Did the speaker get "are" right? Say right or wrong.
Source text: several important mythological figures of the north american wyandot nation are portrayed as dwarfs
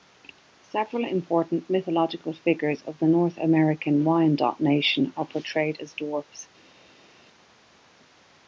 right